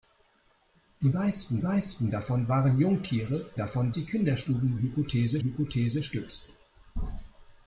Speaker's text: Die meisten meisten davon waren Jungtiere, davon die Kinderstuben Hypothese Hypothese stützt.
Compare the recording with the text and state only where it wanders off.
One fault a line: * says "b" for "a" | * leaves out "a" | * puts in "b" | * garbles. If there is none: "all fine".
all fine